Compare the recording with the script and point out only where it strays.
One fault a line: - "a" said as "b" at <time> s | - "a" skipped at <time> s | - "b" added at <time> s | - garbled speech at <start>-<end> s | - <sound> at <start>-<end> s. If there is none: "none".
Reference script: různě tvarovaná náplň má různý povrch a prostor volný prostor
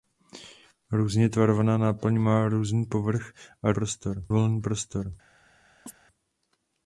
- chirp at 5.9-6.0 s